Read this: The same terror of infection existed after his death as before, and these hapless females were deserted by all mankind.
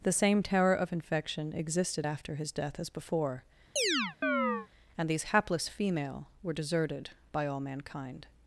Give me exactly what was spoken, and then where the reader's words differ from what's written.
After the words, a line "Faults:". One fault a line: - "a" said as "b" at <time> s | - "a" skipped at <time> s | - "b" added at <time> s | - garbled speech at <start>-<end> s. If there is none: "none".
The same terror of infection existed after his death as before, and these hapless female were deserted by all mankind.
Faults:
- "females" said as "female" at 5.7 s